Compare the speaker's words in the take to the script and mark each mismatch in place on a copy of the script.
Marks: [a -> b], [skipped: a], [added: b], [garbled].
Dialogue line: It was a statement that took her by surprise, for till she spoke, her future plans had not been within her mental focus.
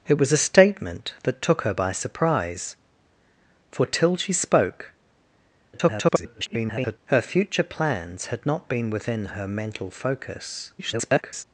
It was a statement that took her by surprise, for till she spoke, [garbled] her future plans had not been within her mental focus. [garbled]